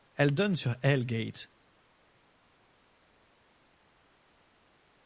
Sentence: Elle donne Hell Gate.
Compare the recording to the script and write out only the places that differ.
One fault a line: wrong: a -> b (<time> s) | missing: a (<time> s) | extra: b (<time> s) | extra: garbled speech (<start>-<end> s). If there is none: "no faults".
extra: sur (0.6 s)